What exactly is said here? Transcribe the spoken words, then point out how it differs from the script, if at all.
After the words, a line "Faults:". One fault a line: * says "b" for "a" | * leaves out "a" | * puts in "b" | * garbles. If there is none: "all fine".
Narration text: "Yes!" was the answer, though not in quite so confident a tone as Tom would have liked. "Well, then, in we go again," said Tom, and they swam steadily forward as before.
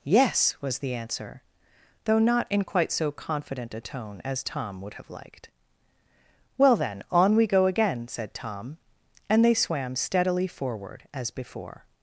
"Yes!" was the answer, though not in quite so confident a tone as Tom would have liked. "Well, then, on we go again," said Tom, and they swam steadily forward as before.
Faults:
* says "on" for "in"